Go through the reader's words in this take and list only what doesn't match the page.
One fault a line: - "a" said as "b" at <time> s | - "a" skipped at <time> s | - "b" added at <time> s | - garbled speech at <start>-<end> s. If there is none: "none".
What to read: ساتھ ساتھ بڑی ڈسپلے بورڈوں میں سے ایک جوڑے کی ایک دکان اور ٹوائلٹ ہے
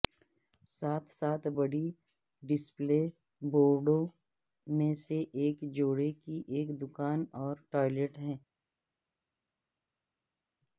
none